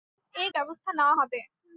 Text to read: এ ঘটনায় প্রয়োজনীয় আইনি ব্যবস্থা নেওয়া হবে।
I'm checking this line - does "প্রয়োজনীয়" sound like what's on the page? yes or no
no